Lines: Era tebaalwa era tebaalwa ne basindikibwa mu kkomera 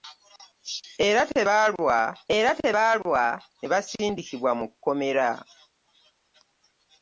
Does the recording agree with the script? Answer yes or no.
yes